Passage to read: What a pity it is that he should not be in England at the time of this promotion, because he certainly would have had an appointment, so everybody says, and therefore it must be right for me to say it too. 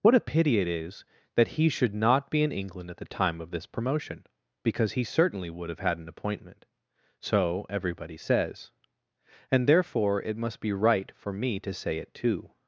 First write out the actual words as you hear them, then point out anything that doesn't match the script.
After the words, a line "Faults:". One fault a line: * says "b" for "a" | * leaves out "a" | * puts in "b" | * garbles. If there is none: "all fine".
What a pity it is that he should not be in England at the time of this promotion, because he certainly would have had an appointment, so everybody says, and therefore it must be right for me to say it too.
Faults:
all fine